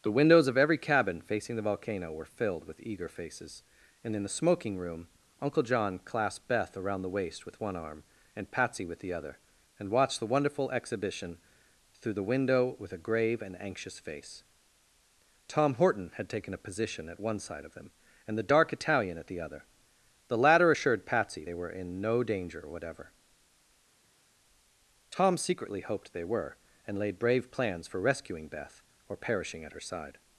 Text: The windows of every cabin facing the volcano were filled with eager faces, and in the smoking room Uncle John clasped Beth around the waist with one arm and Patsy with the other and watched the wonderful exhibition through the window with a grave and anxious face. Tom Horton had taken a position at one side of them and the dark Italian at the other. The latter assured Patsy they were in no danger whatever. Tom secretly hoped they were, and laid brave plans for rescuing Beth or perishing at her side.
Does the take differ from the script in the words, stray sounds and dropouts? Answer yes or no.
no